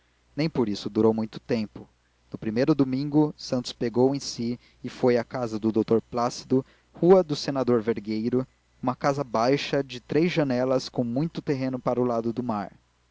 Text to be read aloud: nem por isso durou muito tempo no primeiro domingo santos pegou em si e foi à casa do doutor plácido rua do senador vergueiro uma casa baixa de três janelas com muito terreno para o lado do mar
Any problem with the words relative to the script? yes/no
no